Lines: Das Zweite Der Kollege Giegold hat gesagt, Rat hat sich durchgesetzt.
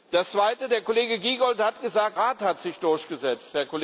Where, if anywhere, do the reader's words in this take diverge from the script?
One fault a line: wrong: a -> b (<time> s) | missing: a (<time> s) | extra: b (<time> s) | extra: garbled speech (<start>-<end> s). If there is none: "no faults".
no faults